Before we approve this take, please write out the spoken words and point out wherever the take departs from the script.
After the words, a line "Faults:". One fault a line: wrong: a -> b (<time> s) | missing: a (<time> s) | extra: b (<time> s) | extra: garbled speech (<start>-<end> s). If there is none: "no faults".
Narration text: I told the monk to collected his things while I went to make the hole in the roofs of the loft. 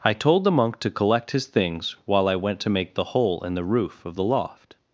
I told the monk to collect his things while I went to make the hole in the roof of the loft.
Faults:
wrong: collected -> collect (0.9 s)
wrong: roofs -> roof (3.6 s)